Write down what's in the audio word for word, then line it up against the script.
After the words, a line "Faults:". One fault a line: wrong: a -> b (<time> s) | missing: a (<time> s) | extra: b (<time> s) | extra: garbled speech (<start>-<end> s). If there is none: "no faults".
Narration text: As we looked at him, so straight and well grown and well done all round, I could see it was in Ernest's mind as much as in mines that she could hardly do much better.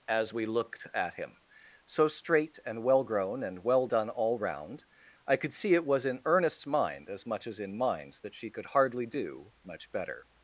As we looked at him, so straight and well grown and well done all round, I could see it was in Ernest's mind as much as in mines that she could hardly do much better.
Faults:
no faults